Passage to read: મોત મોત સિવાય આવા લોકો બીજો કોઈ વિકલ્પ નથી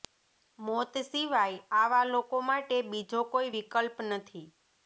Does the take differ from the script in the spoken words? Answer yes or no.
yes